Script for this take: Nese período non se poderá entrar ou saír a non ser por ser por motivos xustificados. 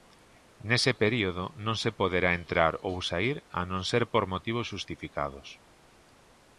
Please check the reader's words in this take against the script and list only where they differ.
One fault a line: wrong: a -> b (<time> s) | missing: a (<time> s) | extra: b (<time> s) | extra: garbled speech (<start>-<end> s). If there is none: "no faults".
missing: ser por (4.2 s)